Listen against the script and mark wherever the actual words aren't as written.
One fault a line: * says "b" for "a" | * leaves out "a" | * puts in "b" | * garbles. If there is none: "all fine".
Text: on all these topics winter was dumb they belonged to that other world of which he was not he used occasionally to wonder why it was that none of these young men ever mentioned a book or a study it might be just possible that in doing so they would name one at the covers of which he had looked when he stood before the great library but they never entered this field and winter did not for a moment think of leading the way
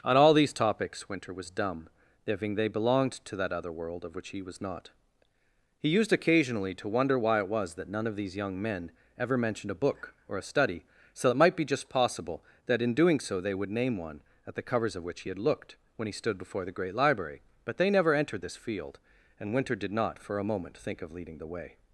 * puts in "thinking"
* puts in "so"